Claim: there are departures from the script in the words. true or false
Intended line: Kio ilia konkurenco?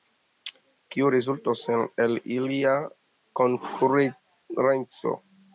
true